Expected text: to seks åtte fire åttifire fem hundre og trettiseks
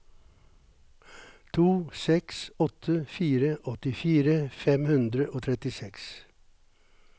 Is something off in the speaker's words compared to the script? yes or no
no